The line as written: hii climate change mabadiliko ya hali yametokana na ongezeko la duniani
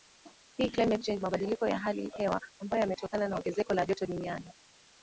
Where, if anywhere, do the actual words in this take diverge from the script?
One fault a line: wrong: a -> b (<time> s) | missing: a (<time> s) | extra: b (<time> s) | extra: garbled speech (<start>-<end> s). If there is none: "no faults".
extra: hewa ambayo (2.2 s)
extra: joto (3.9 s)